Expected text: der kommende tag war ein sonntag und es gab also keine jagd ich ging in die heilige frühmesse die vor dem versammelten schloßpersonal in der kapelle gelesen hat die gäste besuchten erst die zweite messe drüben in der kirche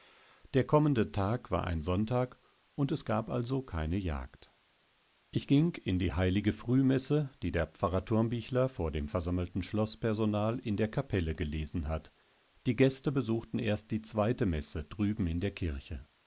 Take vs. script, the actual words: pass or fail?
fail